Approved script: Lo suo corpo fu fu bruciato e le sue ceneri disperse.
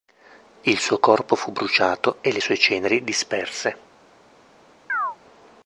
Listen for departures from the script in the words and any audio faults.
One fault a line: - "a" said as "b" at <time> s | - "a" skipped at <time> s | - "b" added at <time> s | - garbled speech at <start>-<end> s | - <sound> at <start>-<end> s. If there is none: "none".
- "Lo" said as "Il" at 0.6 s
- "fu" skipped at 1.5 s
- chirp at 4.9-5.2 s